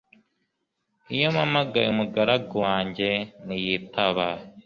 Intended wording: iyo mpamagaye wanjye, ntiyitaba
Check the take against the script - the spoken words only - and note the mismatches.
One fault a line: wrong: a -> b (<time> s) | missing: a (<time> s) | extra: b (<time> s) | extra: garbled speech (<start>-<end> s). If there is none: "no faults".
extra: umugaragu (1.9 s)